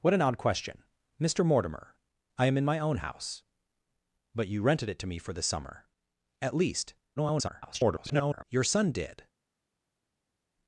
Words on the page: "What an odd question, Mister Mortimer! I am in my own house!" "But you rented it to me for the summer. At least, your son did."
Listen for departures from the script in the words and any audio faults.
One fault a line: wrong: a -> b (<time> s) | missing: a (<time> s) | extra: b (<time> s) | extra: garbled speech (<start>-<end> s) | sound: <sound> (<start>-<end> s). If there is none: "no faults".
extra: garbled speech (7.2-8.4 s)